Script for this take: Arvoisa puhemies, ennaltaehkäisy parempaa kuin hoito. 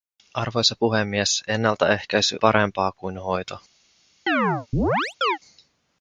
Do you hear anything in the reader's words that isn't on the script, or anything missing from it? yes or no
no